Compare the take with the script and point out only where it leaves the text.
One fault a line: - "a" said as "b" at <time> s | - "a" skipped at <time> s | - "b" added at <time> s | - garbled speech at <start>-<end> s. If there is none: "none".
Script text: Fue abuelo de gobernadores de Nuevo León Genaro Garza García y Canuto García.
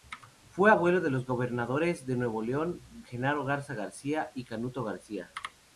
- "los" added at 1.1 s